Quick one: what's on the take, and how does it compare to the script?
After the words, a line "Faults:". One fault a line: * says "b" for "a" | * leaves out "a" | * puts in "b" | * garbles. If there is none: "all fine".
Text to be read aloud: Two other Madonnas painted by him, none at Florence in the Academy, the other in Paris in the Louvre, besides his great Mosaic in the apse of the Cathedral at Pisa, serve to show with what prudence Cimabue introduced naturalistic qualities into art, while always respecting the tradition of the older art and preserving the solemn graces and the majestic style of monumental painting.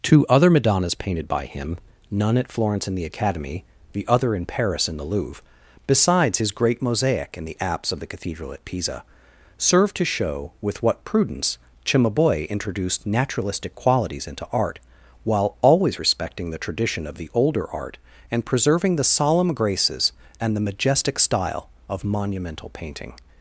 Two other Madonnas painted by him, none at Florence in the Academy, the other in Paris in the Louvre, besides his great Mosaic in the apse of the Cathedral at Pisa, serve to show with what prudence Cimabue introduced naturalistic qualities into art, while always respecting the tradition of the older art and preserving the solemn graces and the majestic style of monumental painting.
Faults:
all fine